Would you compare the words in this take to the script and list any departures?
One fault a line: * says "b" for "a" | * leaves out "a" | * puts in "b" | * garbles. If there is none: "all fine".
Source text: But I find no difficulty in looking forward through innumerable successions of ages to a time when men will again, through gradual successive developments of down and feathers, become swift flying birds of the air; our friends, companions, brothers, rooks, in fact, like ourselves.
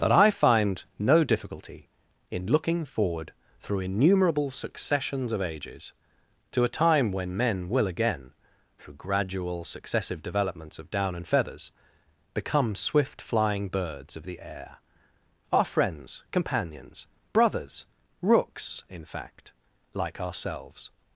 * says "That" for "But"